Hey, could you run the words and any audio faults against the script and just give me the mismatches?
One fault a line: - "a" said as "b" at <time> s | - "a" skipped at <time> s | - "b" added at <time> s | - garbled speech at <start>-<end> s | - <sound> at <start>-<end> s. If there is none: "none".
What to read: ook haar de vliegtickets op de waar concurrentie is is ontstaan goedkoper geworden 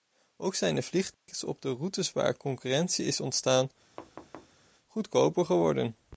- "haar" said as "zijn" at 0.6 s
- dropout at 1.1-1.3 s
- "routes" added at 1.7 s
- "is" skipped at 3.2 s
- thud at 4.0-4.6 s